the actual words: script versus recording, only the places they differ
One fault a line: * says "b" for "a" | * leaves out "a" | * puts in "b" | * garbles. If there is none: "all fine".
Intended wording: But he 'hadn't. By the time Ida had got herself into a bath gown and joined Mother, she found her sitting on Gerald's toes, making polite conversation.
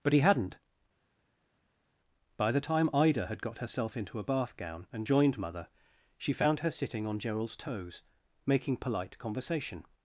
all fine